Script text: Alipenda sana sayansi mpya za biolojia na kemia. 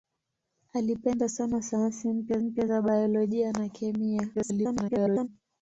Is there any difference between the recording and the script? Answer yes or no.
yes